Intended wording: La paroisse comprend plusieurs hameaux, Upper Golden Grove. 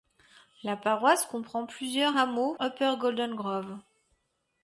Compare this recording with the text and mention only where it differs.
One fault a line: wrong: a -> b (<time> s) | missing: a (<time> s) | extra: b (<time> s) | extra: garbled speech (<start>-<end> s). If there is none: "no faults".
no faults